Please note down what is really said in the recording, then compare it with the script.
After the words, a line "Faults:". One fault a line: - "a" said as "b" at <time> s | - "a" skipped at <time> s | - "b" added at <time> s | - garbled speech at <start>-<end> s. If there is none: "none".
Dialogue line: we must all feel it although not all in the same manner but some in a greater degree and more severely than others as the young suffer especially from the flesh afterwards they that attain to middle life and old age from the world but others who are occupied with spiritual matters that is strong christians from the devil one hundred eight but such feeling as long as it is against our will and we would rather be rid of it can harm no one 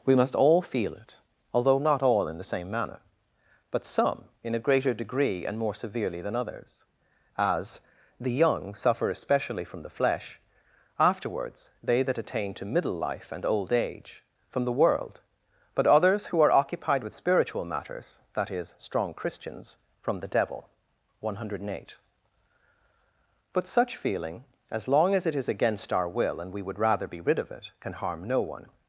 we must all feel it although not all in the same manner but some in a greater degree and more severely than others as the young suffer especially from the flesh afterwards they that attain to middle life and old age from the world but others who are occupied with spiritual matters that is strong christians from the devil one hundred eight but such feeling as long as it is against our will and we would rather be rid of it can harm no one
Faults:
none